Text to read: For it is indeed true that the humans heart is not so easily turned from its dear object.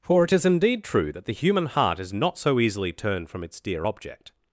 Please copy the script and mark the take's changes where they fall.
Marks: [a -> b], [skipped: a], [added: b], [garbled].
For it is indeed true that the [humans -> human] heart is not so easily turned from its dear object.